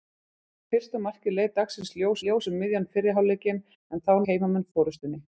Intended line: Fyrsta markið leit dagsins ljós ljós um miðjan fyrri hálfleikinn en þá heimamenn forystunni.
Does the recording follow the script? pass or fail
pass